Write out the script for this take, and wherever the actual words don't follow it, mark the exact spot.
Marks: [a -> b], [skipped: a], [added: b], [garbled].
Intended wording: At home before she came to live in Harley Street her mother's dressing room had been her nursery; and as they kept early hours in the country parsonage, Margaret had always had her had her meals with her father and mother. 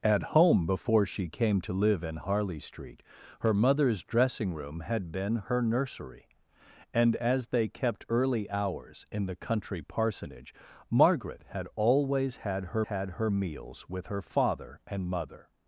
At home before she came to live in Harley Street her mother's dressing room had been her nursery; and as they kept early hours in the country parsonage, Margaret had always had her had her meals with her father and mother.